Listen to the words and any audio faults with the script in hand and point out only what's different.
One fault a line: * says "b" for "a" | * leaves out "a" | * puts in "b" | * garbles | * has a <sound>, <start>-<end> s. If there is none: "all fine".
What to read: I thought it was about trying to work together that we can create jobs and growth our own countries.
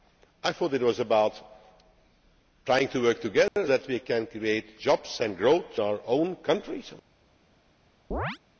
* has a dropout, 3.5-3.6 s
* has a chirp, 8.1-8.4 s